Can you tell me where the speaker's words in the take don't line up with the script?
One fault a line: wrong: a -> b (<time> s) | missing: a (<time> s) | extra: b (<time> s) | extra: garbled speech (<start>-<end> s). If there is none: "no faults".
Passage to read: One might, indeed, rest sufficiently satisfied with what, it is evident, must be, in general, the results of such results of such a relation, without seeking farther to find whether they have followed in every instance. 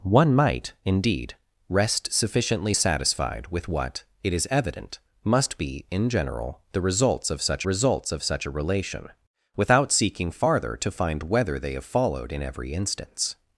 no faults